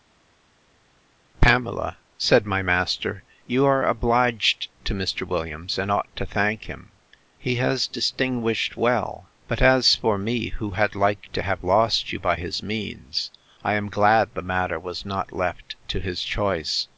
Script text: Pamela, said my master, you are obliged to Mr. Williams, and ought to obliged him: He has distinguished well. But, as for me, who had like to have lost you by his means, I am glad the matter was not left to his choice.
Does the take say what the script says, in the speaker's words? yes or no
no